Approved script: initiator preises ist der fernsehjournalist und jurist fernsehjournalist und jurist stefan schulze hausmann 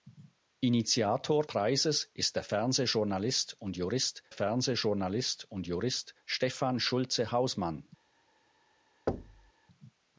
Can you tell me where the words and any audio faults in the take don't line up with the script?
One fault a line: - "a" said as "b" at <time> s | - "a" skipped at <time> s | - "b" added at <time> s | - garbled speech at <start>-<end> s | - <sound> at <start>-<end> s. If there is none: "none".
- thud at 9.1-9.5 s